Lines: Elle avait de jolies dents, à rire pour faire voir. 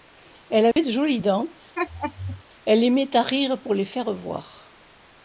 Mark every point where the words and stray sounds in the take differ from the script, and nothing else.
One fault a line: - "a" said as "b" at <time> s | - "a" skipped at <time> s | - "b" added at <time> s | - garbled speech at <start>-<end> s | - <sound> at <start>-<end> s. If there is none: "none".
- dropout at 0.7-0.8 s
- laugh at 1.8-2.4 s
- "elle aimait" added at 2.7 s
- "les" added at 3.7 s